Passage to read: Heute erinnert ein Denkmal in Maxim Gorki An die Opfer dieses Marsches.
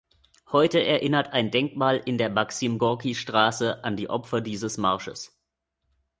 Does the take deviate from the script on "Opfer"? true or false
false